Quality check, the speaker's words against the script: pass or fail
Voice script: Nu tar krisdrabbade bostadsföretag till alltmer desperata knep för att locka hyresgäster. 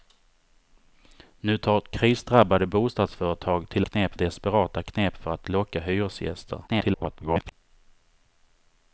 fail